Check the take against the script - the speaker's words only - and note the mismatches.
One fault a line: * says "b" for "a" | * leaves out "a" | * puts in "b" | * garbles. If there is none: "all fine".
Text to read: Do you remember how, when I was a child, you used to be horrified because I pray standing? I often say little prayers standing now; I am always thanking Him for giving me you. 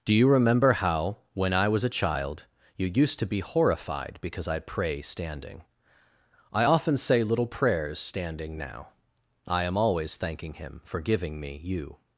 all fine